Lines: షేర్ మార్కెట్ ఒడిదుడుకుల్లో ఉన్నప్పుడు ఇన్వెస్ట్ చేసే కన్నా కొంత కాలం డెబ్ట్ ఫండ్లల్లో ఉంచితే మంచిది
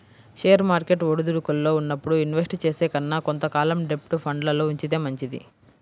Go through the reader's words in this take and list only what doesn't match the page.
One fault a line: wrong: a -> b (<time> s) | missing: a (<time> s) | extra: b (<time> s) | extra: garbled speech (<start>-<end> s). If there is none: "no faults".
no faults